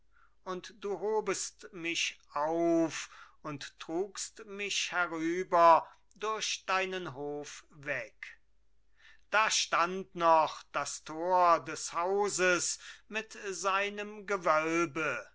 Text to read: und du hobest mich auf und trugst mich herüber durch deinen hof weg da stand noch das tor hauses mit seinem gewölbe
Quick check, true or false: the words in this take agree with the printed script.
false